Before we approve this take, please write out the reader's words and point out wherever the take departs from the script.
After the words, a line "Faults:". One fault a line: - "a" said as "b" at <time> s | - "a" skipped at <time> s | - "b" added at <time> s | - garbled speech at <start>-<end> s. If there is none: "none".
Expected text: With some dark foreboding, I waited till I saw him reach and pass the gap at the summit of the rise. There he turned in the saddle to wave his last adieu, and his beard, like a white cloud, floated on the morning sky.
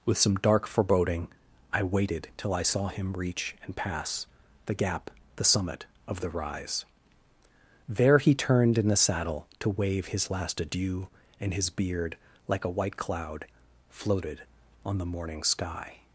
With some dark foreboding, I waited till I saw him reach and pass the gap the summit of the rise. There he turned in the saddle to wave his last adieu, and his beard, like a white cloud, floated on the morning sky.
Faults:
- "at" skipped at 5.1 s